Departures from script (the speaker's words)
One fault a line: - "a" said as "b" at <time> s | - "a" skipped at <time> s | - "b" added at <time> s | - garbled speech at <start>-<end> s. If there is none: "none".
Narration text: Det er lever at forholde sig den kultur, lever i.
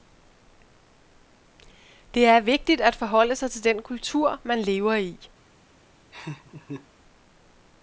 - "lever" said as "vigtigt" at 2.4 s
- "til" added at 3.5 s
- "man" added at 4.4 s